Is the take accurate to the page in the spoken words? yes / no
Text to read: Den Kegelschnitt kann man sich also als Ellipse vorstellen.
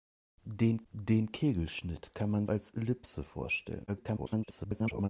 no